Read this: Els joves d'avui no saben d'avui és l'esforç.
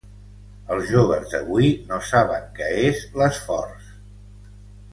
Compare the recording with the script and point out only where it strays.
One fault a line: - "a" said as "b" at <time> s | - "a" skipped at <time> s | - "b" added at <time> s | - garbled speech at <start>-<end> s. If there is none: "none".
- "d'avui" said as "què" at 2.6 s